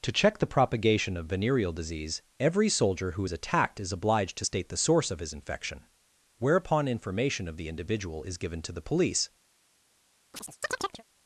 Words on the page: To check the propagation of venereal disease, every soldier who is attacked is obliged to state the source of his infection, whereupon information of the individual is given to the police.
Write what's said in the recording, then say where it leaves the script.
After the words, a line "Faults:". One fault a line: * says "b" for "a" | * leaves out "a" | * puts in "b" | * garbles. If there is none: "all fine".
To check the propagation of venereal disease, every soldier who is attacked is obliged to state the source of his infection, whereupon information of the individual is given to the police.
Faults:
all fine